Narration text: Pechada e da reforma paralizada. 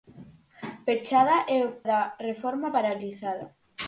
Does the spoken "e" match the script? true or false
true